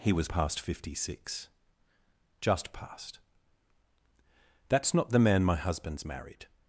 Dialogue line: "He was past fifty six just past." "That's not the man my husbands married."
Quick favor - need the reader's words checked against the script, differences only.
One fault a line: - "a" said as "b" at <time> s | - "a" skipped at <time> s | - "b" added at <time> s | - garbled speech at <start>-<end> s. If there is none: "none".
none